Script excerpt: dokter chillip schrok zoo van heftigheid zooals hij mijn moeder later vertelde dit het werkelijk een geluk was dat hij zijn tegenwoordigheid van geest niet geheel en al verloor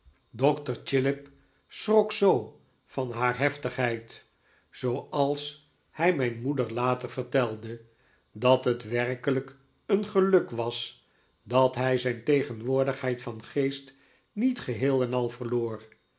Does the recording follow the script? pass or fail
fail